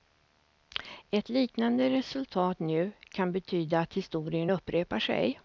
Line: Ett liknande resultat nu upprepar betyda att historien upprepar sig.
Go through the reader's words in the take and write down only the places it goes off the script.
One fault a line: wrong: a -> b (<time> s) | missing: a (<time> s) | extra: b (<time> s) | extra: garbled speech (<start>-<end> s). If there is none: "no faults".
wrong: upprepar -> kan (3.1 s)